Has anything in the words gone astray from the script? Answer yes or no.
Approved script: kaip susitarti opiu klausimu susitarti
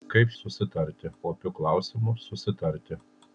no